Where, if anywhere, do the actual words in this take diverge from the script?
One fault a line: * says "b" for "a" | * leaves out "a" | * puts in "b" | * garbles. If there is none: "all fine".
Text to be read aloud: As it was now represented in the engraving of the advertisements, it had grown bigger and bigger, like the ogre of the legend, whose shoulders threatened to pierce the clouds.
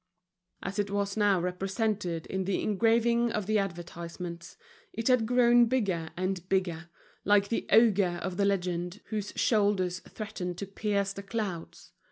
all fine